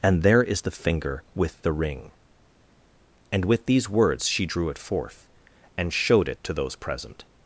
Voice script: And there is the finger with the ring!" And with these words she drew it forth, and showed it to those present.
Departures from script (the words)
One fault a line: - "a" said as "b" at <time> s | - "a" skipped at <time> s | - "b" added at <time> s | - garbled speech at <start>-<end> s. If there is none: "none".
none